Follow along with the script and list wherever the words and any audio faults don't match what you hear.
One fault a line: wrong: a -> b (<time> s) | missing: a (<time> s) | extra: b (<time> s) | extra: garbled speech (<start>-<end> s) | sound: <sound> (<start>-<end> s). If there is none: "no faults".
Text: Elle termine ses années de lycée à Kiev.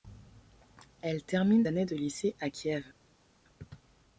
missing: ses (1.7 s)